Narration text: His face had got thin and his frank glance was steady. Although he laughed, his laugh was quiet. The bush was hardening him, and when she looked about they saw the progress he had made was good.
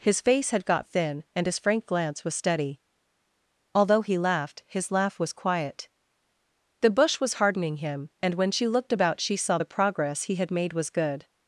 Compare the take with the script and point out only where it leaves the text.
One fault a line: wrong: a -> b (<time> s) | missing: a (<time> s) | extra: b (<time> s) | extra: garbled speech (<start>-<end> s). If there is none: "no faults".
wrong: they -> she (9.2 s)